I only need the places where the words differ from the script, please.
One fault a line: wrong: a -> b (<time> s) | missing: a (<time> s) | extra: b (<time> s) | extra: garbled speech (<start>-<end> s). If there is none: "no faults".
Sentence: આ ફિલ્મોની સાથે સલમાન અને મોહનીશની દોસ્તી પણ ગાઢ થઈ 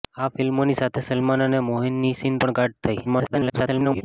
missing: દોસ્તી (2.4 s)
extra: garbled speech (3.0-4.0 s)